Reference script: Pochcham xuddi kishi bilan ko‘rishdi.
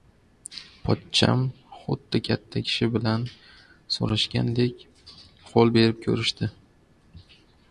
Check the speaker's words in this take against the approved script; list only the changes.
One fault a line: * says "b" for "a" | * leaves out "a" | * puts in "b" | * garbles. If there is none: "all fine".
* puts in "katta"
* puts in "so‘rashgandek qo'l berib"